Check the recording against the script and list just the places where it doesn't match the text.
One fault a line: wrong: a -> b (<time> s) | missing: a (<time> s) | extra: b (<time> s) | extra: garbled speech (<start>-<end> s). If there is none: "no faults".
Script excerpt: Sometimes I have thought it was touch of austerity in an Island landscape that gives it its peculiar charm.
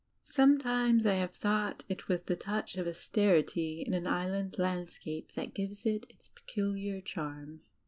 extra: the (2.2 s)